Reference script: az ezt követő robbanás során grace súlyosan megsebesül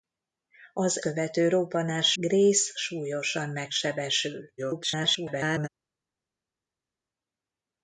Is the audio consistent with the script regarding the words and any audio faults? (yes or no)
no